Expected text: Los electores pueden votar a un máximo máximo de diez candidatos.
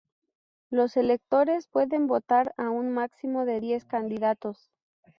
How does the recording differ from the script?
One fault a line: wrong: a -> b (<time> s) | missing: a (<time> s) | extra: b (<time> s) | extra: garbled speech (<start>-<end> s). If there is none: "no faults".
missing: máximo (3.5 s)